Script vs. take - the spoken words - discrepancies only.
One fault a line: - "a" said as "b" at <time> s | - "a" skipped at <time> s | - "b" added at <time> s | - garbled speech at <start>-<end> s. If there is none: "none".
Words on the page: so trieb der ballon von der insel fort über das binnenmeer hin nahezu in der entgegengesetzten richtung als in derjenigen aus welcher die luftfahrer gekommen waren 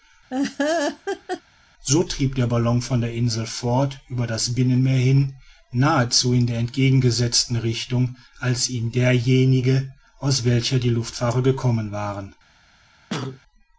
none